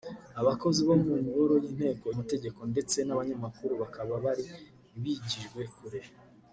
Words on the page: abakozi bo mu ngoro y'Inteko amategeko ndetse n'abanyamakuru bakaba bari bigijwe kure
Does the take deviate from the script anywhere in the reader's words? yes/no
no